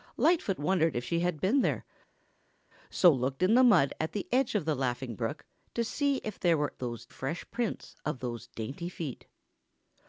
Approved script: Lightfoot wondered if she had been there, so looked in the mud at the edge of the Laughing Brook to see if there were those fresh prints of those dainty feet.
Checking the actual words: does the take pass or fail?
pass